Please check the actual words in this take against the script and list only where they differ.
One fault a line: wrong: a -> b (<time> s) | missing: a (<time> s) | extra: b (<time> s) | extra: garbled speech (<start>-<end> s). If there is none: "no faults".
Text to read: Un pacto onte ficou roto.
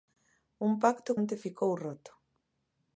no faults